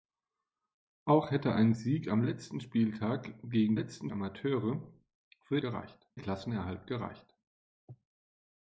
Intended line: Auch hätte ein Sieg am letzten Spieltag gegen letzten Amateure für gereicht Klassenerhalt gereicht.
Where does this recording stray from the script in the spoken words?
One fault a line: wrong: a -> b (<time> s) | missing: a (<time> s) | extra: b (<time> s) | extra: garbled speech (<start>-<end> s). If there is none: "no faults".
no faults